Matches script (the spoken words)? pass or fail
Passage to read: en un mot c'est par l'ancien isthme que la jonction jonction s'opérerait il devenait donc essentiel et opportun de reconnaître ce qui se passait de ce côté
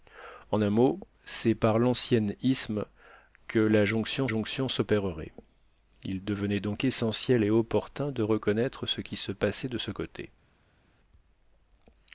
pass